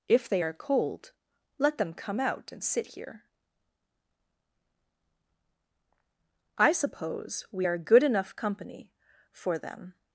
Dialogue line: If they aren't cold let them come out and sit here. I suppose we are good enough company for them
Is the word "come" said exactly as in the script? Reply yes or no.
yes